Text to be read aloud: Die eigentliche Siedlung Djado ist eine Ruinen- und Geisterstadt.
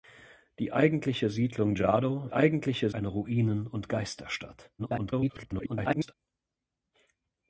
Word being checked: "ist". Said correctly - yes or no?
no